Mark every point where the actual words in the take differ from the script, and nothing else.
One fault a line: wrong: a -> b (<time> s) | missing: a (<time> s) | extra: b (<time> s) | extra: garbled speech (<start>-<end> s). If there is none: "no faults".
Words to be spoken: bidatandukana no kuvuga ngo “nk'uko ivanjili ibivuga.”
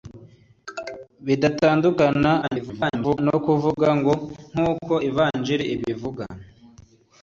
extra: garbled speech (2.4-3.2 s)